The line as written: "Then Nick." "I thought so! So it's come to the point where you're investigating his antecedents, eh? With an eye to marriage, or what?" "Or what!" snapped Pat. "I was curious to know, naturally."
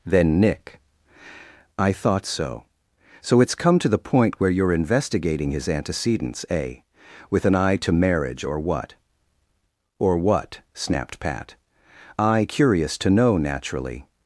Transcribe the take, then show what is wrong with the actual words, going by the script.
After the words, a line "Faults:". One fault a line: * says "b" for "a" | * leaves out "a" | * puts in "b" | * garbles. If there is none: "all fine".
"Then Nick." "I thought so! So it's come to the point where you're investigating his antecedents, eh? With an eye to marriage, or what?" "Or what!" snapped Pat. "I curious to know, naturally."
Faults:
* leaves out "was"